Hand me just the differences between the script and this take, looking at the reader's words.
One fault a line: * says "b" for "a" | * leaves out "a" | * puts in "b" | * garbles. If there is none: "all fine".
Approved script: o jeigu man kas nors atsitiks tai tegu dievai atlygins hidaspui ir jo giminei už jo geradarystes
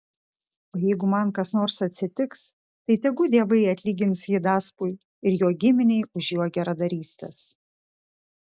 all fine